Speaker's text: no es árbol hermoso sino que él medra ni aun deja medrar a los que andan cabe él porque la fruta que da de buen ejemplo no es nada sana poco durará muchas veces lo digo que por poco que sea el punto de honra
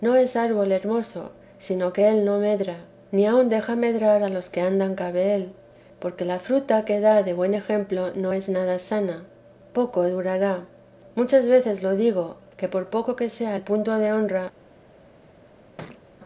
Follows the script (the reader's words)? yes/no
no